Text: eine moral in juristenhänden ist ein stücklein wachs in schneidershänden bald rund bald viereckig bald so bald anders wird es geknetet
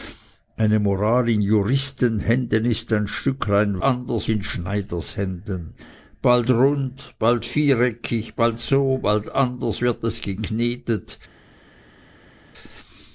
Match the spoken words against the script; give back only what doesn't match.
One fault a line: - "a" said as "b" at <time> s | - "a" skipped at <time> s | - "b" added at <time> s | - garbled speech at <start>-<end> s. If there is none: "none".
- "wachs" said as "anders" at 3.8 s